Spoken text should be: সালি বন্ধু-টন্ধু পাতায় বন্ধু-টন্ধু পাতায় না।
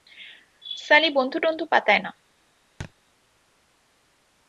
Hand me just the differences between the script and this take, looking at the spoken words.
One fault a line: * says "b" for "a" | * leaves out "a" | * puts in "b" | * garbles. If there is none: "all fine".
* leaves out "বন্ধু-টন্ধু পাতায়"